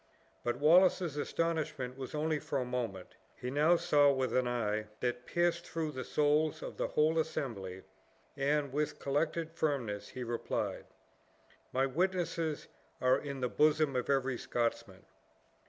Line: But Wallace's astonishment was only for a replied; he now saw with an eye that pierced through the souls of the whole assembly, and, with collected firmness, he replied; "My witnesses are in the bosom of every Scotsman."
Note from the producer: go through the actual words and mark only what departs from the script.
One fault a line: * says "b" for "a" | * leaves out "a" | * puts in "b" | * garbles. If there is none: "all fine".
* says "moment" for "replied"